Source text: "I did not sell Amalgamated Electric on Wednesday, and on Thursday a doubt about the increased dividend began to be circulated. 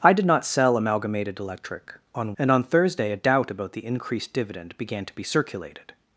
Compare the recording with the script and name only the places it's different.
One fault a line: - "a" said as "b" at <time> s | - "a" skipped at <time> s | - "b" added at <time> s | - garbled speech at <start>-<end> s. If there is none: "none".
- "Wednesday" skipped at 2.3 s